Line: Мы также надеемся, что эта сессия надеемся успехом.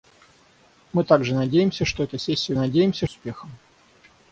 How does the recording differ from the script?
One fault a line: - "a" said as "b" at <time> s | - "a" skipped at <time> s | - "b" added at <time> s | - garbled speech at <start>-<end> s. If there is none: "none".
none